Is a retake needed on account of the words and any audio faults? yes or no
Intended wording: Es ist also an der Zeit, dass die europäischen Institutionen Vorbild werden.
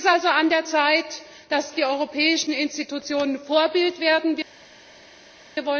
no